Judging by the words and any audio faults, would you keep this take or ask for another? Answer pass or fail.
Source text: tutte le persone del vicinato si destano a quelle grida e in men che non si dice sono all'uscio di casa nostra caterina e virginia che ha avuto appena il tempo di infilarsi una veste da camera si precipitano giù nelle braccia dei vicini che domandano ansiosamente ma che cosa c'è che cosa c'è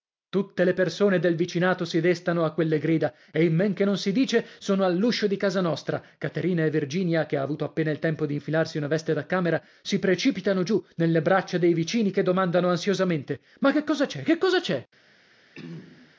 fail